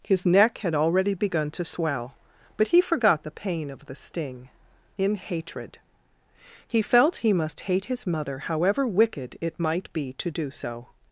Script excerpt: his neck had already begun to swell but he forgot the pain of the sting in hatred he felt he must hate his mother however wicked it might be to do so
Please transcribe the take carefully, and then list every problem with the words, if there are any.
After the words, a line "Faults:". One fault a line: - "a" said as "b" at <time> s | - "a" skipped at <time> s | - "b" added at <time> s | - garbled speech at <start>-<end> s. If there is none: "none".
his neck had already begun to swell but he forgot the pain of the sting in hatred he felt he must hate his mother however wicked it might be to do so
Faults:
none